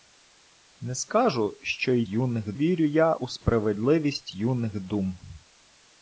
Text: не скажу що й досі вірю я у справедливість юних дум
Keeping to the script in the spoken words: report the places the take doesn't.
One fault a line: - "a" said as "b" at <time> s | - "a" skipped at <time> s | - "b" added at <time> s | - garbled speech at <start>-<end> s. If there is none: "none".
- "досі" said as "юних" at 2.1 s